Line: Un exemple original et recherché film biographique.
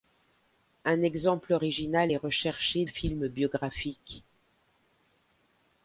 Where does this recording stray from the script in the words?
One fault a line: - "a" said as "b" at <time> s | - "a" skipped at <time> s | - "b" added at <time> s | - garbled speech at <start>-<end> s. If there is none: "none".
none